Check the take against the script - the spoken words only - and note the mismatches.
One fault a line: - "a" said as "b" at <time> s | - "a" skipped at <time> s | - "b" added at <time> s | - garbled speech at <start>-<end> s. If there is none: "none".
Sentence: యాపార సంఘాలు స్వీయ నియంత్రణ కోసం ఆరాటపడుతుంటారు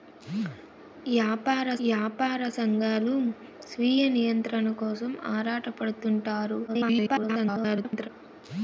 - "యాపార" added at 1.9 s
- garbled speech at 6.7-8.1 s